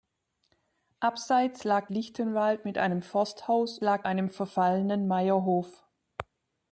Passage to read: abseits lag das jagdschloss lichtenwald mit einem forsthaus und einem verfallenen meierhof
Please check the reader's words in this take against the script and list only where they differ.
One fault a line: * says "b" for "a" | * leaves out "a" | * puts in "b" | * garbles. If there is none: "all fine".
* leaves out "das jagdschloss"
* says "lag" for "und"